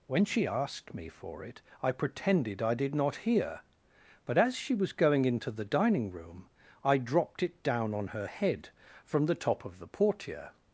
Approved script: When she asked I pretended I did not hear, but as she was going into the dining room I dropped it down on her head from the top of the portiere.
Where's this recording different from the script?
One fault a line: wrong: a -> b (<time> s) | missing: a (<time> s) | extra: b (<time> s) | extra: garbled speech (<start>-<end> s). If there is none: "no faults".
extra: me for it (0.9 s)